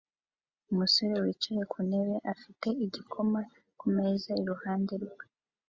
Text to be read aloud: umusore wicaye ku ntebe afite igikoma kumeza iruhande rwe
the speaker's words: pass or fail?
pass